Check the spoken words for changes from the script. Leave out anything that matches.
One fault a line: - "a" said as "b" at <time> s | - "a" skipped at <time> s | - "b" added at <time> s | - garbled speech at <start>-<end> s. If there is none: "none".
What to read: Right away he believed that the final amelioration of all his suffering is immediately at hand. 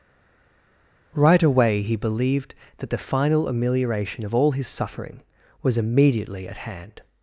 - "is" said as "was" at 5.6 s